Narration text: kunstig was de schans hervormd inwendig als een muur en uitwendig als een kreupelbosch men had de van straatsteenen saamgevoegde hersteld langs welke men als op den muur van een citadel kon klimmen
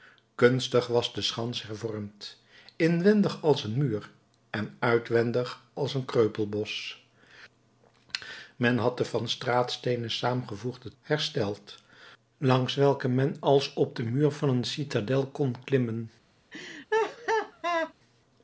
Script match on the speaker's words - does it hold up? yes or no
yes